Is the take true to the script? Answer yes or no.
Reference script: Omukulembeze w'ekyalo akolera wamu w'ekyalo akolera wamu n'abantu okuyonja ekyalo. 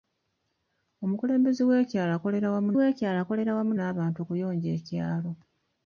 yes